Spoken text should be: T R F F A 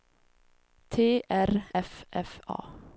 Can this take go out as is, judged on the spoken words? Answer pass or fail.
pass